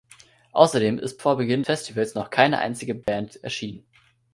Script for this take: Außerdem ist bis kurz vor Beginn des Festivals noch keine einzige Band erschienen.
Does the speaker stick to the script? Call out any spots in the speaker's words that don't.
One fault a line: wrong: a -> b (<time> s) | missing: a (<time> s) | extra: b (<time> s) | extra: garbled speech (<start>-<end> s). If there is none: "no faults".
missing: bis kurz (1.2 s)
missing: des (1.6 s)